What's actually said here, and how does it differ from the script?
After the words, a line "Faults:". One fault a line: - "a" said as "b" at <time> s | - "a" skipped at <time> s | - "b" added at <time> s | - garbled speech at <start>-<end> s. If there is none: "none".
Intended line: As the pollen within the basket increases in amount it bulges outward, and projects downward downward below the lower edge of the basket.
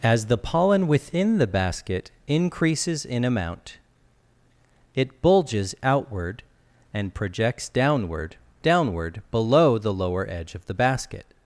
As the pollen within the basket increases in amount it bulges outward, and projects downward downward below the lower edge of the basket.
Faults:
none